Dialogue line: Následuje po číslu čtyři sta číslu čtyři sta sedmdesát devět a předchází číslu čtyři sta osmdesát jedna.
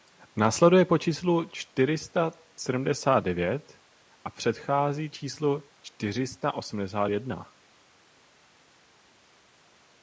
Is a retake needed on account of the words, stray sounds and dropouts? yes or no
yes